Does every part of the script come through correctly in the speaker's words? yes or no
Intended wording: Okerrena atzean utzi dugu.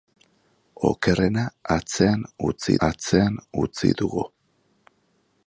no